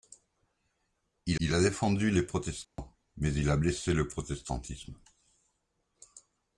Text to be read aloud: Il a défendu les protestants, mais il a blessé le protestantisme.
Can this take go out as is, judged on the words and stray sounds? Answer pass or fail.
fail